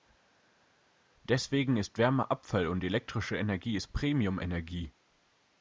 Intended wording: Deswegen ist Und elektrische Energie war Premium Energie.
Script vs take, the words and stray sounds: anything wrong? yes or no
yes